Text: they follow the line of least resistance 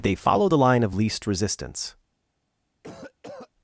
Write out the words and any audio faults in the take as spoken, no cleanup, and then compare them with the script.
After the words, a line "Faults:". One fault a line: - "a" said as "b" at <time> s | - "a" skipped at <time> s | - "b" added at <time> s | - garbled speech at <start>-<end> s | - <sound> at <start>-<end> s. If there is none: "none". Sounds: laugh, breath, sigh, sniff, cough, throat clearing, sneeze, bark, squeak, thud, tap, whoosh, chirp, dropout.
they follow the line of least resistance
Faults:
- cough at 2.8-3.5 s